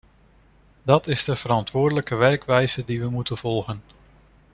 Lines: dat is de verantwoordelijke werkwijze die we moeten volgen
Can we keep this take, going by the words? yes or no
yes